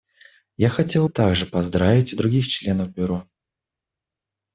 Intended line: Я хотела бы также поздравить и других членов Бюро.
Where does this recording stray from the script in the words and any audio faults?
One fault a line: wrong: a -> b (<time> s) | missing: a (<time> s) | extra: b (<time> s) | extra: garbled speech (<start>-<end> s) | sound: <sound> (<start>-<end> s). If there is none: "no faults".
missing: бы (1.1 s)